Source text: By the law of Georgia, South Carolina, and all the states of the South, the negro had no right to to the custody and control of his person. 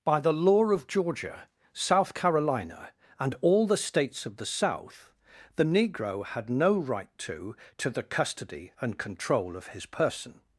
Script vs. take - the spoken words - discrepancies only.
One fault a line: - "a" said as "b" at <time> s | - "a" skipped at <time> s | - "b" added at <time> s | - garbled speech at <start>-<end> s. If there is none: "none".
none